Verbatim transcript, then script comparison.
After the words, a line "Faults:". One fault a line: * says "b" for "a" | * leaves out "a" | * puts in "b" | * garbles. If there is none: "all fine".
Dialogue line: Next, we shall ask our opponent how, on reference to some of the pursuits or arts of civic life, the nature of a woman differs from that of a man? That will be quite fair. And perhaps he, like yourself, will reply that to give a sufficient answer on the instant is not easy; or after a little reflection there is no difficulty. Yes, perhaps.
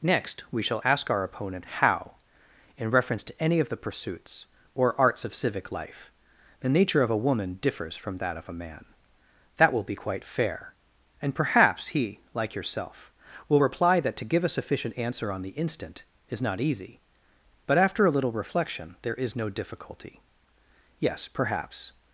Next, we shall ask our opponent how, in reference to any of the pursuits or arts of civic life, the nature of a woman differs from that of a man? That will be quite fair. And perhaps he, like yourself, will reply that to give a sufficient answer on the instant is not easy; but after a little reflection there is no difficulty. Yes, perhaps.
Faults:
* says "in" for "on"
* says "any" for "some"
* says "but" for "or"